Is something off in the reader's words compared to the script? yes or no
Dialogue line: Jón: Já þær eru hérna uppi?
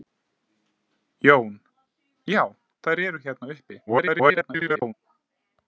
yes